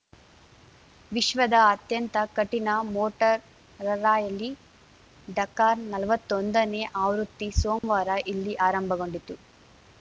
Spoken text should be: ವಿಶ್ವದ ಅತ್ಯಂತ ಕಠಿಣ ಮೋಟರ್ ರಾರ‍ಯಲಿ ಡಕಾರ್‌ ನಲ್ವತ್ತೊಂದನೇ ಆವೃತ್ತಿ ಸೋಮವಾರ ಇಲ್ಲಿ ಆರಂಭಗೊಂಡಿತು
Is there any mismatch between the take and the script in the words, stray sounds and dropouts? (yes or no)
yes